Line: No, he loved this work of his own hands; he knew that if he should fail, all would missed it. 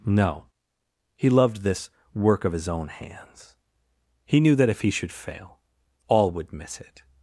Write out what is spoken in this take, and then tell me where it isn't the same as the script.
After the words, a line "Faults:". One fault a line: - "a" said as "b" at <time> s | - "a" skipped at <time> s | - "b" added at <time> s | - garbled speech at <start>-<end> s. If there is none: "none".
No, he loved this work of his own hands; he knew that if he should fail, all would miss it.
Faults:
- "missed" said as "miss" at 6.5 s